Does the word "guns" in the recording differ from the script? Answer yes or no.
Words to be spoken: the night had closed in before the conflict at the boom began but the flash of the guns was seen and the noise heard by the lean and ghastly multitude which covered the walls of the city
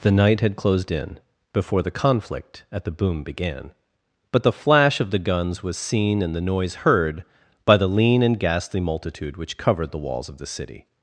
no